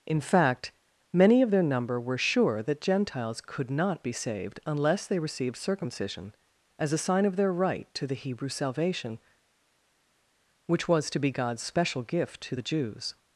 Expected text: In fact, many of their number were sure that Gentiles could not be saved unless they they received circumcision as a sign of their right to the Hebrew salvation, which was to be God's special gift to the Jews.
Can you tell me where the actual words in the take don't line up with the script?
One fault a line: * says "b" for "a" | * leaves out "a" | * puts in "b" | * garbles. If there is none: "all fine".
* leaves out "they"